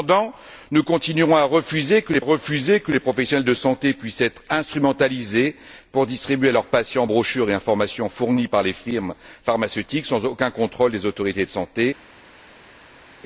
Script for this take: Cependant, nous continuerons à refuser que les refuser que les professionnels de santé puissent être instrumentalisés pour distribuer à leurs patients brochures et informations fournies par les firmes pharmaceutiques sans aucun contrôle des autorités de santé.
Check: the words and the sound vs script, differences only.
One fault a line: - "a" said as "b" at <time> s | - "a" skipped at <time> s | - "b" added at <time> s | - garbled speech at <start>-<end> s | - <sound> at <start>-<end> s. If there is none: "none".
none